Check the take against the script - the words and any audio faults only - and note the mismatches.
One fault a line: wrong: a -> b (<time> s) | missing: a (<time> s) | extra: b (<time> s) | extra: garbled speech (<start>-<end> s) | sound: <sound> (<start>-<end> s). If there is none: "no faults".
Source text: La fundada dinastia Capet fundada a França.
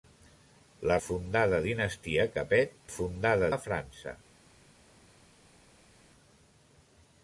no faults